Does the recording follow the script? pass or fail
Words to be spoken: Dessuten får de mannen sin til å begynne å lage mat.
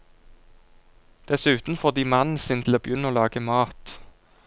pass